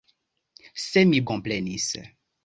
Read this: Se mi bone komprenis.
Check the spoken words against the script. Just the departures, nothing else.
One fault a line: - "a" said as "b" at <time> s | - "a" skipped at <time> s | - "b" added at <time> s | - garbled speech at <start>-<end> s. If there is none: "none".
- "bone" skipped at 1.2 s